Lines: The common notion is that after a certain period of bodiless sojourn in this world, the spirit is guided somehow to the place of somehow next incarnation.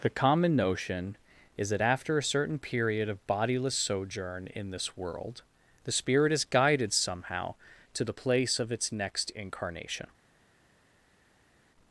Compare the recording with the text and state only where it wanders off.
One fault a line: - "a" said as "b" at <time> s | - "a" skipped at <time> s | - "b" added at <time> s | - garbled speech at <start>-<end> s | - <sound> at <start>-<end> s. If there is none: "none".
- "somehow" said as "its" at 8.7 s